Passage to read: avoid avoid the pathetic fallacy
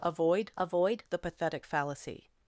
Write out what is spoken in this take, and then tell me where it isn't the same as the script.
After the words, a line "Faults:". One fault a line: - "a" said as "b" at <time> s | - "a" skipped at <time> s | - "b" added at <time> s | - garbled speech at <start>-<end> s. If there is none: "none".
avoid avoid the pathetic fallacy
Faults:
none